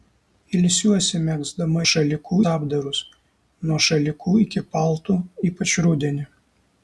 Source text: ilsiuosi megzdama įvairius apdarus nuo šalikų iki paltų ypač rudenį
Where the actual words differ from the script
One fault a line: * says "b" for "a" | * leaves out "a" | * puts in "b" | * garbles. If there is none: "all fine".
* says "šalikų" for "įvairius"